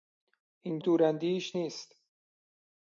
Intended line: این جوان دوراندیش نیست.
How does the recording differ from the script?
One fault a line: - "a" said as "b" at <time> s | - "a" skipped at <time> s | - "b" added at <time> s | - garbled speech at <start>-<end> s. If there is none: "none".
- "جوان" skipped at 0.8 s